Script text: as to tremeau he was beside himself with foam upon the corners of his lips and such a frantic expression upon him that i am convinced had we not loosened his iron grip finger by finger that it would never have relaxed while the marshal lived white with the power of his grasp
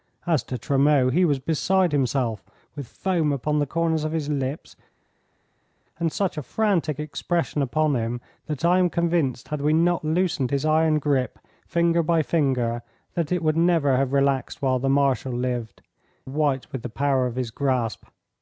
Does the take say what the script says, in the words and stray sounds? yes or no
yes